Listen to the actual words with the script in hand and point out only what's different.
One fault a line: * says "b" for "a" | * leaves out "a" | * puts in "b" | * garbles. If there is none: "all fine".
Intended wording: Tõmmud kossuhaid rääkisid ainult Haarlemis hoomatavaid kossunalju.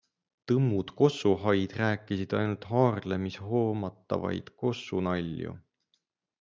all fine